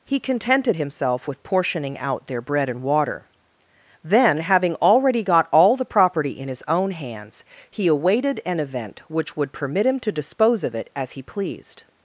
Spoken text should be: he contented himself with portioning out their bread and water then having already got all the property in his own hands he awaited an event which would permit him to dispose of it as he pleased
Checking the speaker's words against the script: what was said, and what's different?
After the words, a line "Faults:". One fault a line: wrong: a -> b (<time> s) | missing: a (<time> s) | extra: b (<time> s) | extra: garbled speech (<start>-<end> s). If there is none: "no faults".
he contented himself with portioning out their bread and water then having already got all the property in his own hands he awaited an event which would permit him to dispose of it as he pleased
Faults:
no faults